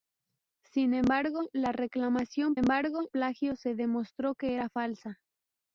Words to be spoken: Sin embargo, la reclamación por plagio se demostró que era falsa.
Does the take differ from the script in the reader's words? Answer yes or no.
yes